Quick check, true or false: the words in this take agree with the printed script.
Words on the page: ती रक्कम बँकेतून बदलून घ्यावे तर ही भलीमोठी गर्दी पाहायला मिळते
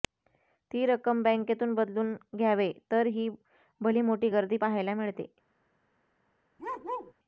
true